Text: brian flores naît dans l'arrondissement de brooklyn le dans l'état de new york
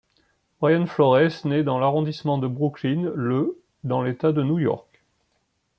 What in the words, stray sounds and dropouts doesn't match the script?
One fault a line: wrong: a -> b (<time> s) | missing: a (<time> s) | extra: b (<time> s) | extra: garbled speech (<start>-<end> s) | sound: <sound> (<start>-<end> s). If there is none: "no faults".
no faults